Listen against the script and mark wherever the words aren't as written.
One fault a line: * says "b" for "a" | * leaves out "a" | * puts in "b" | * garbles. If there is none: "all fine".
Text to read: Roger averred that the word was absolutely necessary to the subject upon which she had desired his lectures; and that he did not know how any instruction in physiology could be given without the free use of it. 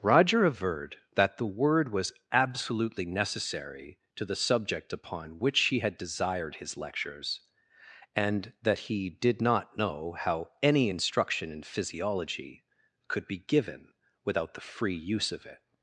* says "he" for "she"